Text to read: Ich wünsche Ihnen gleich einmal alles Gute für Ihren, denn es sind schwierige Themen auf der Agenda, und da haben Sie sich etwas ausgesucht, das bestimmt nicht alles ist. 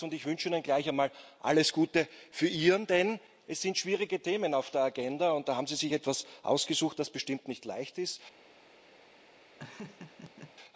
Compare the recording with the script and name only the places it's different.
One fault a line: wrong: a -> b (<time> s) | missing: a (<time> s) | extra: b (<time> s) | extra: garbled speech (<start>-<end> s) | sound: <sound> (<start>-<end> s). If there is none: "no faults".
wrong: alles -> leicht (7.7 s)
sound: laugh (9.6-10.5 s)